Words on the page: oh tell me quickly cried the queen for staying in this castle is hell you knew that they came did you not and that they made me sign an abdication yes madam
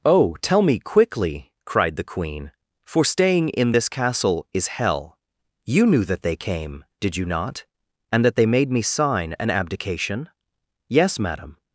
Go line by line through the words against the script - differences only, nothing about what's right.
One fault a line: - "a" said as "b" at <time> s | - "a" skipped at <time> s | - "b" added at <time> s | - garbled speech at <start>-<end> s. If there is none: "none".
none